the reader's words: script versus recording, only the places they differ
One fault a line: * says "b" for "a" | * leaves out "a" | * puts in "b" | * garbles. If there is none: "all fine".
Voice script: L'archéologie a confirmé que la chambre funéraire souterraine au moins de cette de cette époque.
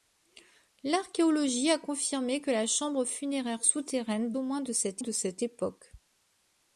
all fine